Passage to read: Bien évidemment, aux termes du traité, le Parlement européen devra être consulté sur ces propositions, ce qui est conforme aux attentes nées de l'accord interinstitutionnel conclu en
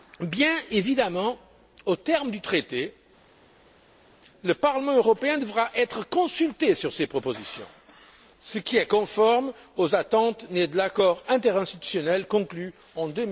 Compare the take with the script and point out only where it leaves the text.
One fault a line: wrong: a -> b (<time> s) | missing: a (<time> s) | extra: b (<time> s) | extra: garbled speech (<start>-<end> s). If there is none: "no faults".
no faults